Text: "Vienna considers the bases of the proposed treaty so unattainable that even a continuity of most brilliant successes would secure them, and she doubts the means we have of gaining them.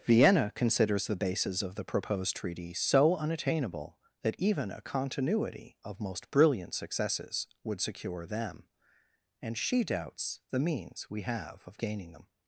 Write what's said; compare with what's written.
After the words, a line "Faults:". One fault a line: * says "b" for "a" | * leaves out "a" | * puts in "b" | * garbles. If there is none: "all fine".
"Vienna considers the bases of the proposed treaty so unattainable that even a continuity of most brilliant successes would secure them, and she doubts the means we have of gaining them.
Faults:
all fine